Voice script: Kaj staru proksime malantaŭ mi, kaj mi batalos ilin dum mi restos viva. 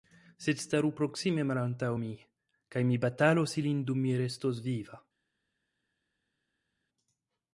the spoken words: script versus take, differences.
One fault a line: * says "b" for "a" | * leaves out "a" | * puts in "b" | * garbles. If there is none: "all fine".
* says "Sed" for "Kaj"